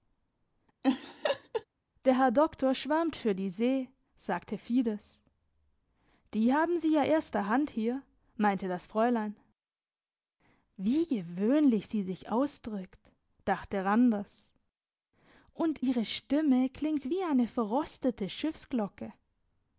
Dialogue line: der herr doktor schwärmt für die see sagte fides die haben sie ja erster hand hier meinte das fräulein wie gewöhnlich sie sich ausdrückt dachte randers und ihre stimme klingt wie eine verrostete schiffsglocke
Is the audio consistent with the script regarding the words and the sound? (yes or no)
no